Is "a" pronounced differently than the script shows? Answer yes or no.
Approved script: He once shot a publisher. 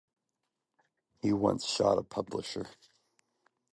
no